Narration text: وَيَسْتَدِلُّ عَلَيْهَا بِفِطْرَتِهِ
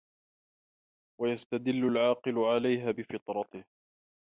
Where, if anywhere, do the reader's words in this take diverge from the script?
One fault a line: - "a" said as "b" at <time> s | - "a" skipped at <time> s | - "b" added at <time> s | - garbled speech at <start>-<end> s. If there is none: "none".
- "الْعَاقِلُ" added at 1.9 s